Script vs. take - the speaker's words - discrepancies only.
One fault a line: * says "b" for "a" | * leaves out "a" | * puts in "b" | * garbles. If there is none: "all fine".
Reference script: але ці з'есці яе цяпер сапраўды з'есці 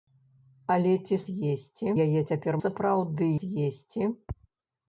all fine